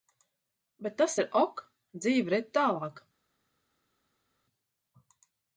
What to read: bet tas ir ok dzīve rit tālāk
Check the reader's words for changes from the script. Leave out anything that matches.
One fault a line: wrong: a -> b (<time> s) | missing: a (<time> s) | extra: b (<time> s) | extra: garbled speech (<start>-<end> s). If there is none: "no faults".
no faults